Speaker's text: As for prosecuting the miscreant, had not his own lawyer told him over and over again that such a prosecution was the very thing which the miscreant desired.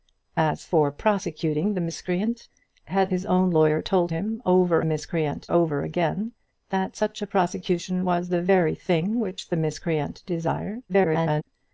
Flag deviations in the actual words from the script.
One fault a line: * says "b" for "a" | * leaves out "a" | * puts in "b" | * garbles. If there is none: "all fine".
* leaves out "not"
* says "miscreant" for "and"
* garbles